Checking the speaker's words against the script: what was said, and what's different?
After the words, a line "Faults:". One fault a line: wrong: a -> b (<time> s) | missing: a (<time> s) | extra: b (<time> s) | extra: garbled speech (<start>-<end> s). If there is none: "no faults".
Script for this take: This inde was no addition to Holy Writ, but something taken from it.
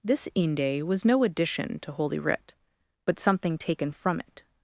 This inde was no addition to Holy Writ, but something taken from it.
Faults:
no faults